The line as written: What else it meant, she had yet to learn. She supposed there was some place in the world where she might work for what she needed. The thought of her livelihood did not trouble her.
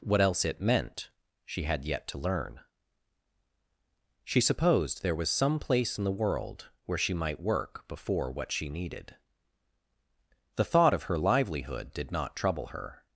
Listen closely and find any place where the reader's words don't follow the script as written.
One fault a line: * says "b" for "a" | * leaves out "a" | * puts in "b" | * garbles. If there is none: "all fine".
* says "before" for "for"